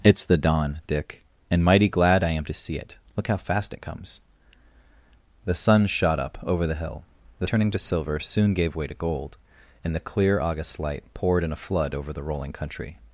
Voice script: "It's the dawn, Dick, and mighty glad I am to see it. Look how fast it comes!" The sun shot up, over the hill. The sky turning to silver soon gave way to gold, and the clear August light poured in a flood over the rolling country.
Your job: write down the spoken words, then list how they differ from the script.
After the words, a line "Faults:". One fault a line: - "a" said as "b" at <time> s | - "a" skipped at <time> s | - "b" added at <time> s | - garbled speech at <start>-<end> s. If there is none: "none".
"It's the dawn, Dick, and mighty glad I am to see it. Look how fast it comes!" The sun shot up, over the hill. The turning to silver soon gave way to gold, and the clear August light poured in a flood over the rolling country.
Faults:
- "sky" skipped at 7.5 s